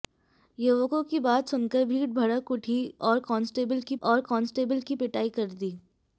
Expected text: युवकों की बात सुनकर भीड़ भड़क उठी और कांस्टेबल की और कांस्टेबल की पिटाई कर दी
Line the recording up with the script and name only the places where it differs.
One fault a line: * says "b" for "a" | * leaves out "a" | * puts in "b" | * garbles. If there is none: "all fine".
all fine